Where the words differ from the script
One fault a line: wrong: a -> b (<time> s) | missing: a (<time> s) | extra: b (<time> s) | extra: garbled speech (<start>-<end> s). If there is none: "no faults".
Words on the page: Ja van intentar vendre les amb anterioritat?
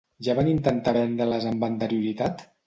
no faults